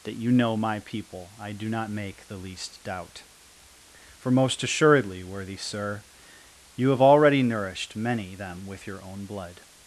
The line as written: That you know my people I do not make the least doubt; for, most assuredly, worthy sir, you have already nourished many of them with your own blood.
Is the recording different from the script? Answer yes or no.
yes